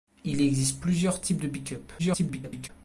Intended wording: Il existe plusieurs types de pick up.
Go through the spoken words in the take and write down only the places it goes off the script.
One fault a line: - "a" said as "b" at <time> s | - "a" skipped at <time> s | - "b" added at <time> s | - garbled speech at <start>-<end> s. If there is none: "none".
- garbled speech at 2.0-2.7 s